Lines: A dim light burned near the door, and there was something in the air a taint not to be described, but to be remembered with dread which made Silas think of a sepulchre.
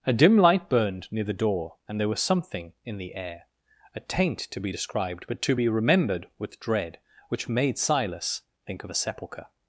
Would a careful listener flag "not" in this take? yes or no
yes